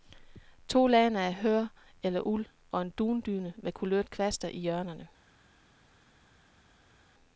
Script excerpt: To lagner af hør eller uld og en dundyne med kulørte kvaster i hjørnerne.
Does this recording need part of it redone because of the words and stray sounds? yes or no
no